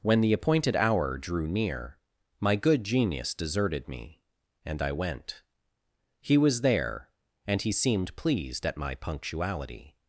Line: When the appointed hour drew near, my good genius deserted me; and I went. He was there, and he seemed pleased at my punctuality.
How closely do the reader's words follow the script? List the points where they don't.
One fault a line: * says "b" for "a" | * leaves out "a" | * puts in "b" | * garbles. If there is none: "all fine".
all fine